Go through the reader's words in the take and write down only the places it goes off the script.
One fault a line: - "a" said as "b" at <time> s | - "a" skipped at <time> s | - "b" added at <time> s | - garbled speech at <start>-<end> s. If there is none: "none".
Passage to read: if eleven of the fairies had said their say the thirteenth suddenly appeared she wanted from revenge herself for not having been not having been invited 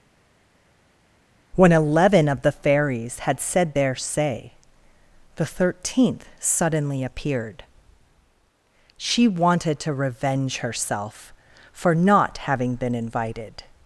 - "if" said as "when" at 1.5 s
- "from" said as "to" at 9.8 s
- "not having been" skipped at 12.9 s